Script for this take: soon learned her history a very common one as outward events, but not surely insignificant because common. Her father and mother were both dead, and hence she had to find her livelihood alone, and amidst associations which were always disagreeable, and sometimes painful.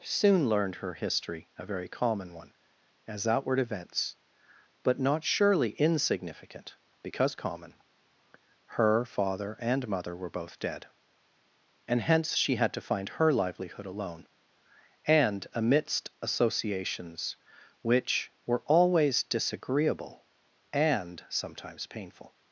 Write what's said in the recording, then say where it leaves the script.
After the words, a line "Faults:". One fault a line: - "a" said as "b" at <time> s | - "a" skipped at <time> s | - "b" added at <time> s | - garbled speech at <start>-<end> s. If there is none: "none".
soon learned her history a very common one as outward events, but not surely insignificant because common. Her father and mother were both dead, and hence she had to find her livelihood alone, and amidst associations which were always disagreeable, and sometimes painful.
Faults:
none